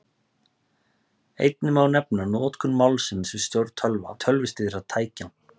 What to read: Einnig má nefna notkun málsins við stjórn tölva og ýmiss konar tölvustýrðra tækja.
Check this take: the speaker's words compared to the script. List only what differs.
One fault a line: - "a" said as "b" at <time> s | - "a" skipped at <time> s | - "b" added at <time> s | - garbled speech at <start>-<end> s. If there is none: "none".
- "og ýmiss konar" skipped at 4.2 s